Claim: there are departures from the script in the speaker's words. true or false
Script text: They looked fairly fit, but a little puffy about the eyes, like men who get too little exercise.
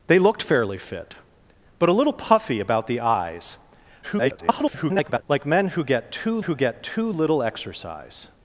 true